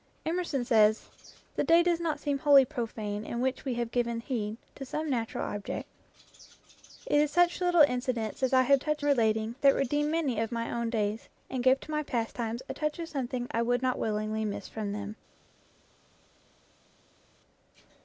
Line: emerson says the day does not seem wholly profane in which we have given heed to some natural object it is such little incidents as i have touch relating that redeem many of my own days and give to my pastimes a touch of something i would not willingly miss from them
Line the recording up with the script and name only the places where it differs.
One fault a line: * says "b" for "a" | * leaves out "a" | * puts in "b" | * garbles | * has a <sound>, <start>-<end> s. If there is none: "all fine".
all fine